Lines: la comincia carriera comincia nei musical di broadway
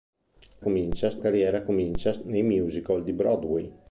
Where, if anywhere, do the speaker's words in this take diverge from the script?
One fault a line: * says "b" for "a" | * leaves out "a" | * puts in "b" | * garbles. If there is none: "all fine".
all fine